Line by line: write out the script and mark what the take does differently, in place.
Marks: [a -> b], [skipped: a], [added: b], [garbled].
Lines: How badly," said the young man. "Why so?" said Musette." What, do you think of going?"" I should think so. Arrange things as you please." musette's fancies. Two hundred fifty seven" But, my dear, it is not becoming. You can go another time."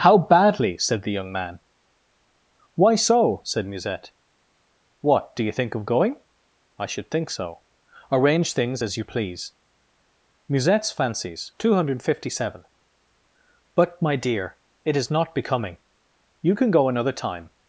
How badly," said the young man. "Why so?" said Musette." What, do you think of going?"" I should think so. Arrange things as you please." musette's fancies. Two hundred fifty seven" But, my dear, it is not becoming. You can go another time."